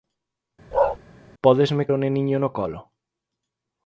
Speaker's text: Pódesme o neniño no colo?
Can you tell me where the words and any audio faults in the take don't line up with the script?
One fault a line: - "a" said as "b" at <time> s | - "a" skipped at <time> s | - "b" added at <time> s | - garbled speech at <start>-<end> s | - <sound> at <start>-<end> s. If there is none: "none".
- bark at 0.7-1.0 s